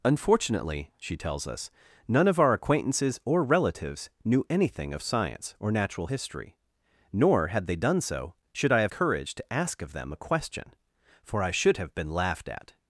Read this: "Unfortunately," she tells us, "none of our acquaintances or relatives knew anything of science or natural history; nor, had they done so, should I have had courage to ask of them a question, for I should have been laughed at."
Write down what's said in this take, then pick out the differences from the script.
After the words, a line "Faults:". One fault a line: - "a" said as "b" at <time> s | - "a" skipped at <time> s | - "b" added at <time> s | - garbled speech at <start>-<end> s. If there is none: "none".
"Unfortunately," she tells us, "none of our acquaintances or relatives knew anything of science or natural history; nor, had they done so, should I have courage to ask of them a question, for I should have been laughed at."
Faults:
- "had" skipped at 8.9 s